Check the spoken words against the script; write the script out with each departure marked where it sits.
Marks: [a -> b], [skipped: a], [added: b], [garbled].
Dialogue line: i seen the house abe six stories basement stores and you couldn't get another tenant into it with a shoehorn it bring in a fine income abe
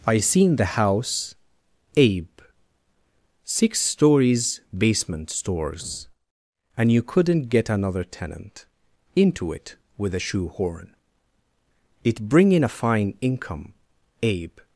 i seen the house abe six stories basement stores and you couldn't get another tenant into it with a shoehorn it bring in a fine income abe